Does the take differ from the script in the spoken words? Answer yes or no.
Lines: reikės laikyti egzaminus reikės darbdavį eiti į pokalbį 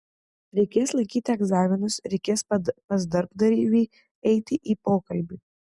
yes